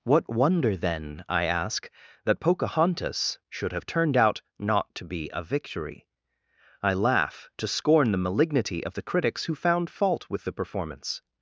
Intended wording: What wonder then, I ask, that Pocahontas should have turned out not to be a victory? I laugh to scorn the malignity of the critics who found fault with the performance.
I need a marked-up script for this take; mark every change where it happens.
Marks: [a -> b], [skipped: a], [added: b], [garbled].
What wonder then, I ask, that Pocahontas should have turned out not to be a victory? I laugh to scorn the malignity of the critics who found fault with the performance.